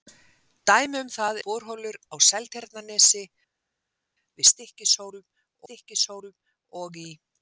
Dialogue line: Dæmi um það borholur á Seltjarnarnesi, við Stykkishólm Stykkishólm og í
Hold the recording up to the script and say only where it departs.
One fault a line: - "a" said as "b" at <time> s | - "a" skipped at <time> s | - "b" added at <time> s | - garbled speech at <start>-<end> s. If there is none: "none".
none